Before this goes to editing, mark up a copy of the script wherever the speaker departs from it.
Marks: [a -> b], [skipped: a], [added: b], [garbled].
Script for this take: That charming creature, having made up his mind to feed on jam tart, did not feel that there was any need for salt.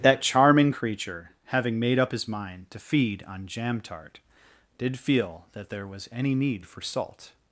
That charming creature, having made up his mind to feed on jam tart, did [skipped: not] feel that there was any need for salt.